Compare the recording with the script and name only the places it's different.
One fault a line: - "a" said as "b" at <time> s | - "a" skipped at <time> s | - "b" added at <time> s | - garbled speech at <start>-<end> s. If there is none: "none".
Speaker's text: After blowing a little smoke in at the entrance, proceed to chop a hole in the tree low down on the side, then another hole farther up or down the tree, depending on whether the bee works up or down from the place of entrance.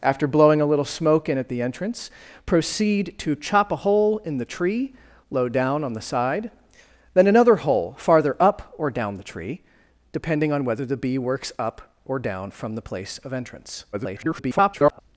- garbled speech at 13.9-15.0 s